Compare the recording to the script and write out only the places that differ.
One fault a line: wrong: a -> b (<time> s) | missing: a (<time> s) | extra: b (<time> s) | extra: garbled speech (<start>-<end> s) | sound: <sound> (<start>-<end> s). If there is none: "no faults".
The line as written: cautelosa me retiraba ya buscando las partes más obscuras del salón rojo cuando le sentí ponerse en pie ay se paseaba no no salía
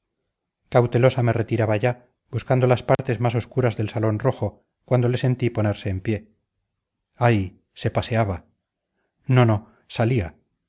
sound: dropout (2.9-3.0 s)